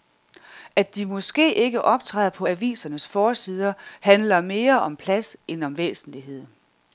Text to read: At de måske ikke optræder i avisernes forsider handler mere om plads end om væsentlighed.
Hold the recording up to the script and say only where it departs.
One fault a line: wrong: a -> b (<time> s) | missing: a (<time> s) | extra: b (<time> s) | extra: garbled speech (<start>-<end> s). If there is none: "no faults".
wrong: i -> på (2.3 s)